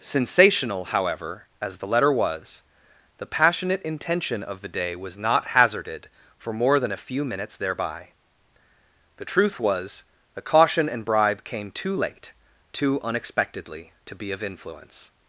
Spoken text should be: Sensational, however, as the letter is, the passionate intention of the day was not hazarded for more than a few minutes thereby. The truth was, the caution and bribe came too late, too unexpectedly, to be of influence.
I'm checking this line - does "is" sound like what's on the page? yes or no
no